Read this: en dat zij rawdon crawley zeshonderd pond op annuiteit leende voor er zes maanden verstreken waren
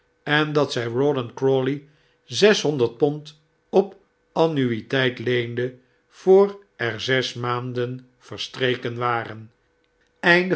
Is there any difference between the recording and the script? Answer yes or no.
no